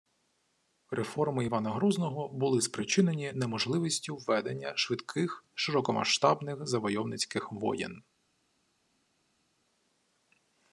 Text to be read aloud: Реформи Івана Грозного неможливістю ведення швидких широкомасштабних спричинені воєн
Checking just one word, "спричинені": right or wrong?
wrong